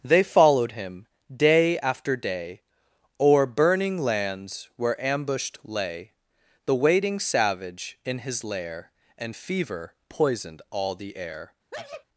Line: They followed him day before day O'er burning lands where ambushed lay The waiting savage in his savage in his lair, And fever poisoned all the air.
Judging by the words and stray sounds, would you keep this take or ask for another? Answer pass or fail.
fail